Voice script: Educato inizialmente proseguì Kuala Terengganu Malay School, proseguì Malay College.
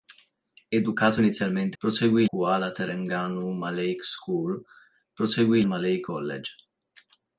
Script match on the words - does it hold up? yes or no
yes